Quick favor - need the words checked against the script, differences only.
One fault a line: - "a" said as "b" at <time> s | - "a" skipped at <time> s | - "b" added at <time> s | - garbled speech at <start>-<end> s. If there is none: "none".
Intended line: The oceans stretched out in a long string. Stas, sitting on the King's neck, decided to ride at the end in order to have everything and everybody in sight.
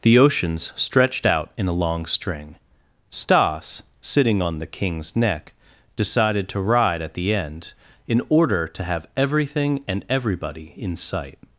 none